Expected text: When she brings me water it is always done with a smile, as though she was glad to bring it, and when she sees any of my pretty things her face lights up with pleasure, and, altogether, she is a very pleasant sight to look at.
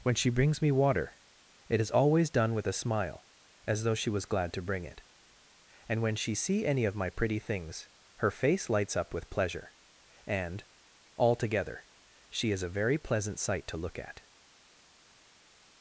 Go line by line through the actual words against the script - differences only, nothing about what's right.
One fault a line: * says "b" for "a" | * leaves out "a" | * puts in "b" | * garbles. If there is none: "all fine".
* says "see" for "sees"